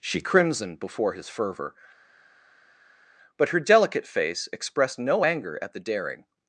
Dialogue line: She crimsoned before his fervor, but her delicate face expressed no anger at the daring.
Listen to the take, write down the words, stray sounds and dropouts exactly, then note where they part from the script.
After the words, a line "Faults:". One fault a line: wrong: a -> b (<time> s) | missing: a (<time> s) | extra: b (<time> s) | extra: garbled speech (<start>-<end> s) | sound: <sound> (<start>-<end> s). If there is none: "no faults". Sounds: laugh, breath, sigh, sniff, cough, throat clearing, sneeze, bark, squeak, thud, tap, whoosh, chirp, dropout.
She crimsoned before his fervor, but her delicate face expressed no anger at the daring.
Faults:
no faults